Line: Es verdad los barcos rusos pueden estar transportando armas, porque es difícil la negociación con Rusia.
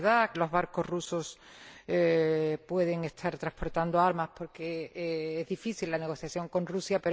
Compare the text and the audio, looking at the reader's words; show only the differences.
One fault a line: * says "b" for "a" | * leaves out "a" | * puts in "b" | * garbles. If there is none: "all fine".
all fine